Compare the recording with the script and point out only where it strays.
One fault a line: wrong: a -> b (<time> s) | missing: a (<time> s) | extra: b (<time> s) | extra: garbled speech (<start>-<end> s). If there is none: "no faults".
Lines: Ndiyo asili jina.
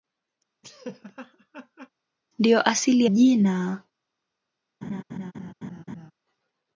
no faults